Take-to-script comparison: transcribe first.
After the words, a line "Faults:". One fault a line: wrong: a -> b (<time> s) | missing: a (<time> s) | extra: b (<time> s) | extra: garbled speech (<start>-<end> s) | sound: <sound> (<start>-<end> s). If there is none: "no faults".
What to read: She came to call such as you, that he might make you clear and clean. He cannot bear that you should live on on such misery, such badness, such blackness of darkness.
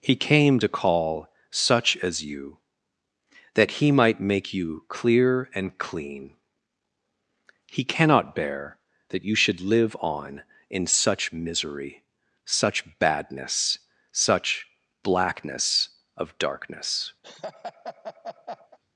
He came to call such as you, that he might make you clear and clean. He cannot bear that you should live on in such misery, such badness, such blackness of darkness.
Faults:
wrong: She -> He (0.0 s)
wrong: on -> in (10.7 s)
sound: laugh (17.2-18.8 s)